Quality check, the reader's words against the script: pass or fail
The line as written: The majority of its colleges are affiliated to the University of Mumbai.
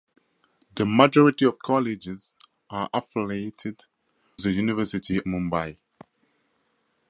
fail